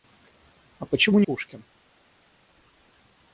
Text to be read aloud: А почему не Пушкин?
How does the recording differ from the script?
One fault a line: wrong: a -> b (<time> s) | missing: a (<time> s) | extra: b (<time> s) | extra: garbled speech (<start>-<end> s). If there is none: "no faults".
no faults